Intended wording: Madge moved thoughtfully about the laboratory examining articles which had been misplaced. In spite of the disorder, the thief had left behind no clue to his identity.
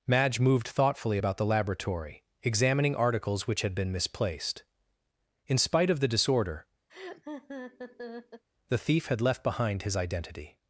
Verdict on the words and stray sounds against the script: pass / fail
fail